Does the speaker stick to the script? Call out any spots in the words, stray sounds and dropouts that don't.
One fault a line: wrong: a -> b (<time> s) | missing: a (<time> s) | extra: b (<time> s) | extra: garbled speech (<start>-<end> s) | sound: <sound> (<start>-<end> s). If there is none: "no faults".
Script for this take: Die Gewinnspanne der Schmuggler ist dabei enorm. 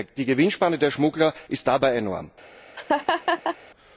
sound: laugh (2.8-3.6 s)